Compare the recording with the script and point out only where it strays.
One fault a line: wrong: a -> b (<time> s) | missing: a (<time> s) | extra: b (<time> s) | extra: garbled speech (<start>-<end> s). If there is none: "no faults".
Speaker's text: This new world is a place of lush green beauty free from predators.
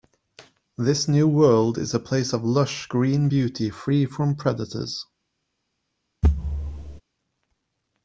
no faults